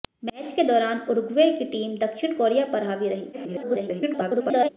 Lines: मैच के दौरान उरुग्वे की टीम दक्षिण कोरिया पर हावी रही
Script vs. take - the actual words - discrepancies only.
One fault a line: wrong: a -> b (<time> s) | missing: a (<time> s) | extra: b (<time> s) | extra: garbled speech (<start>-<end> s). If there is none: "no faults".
extra: garbled speech (3.3-4.7 s)